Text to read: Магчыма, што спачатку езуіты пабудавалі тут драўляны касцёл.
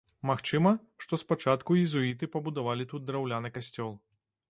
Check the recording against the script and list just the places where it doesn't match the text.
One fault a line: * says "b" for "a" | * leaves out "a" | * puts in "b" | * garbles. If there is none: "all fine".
all fine